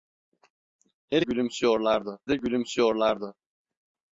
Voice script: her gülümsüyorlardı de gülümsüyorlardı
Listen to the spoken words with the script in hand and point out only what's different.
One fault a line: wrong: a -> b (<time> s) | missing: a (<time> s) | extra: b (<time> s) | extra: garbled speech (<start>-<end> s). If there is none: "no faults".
no faults